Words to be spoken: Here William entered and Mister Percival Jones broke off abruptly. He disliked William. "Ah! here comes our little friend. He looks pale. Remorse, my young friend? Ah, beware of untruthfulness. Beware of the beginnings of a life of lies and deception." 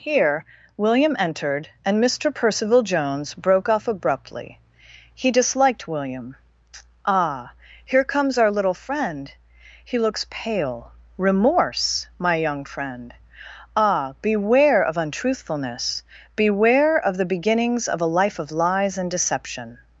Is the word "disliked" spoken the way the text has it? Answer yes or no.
yes